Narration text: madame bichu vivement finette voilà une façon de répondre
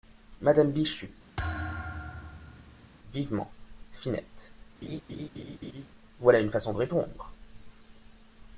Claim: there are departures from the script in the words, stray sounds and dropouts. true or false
true